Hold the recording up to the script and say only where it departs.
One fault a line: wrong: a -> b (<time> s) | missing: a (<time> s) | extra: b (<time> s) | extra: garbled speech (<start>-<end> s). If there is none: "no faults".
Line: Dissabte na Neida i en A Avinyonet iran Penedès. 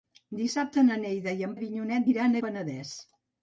no faults